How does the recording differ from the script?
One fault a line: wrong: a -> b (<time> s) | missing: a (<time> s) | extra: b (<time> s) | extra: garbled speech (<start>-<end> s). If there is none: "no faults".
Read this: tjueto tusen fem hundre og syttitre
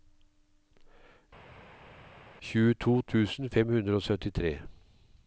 no faults